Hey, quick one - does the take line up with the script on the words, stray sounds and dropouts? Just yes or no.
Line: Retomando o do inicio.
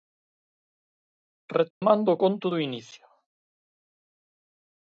no